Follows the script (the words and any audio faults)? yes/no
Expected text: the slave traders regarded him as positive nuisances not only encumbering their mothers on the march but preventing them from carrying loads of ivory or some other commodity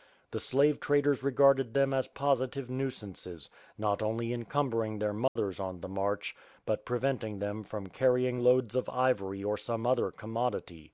no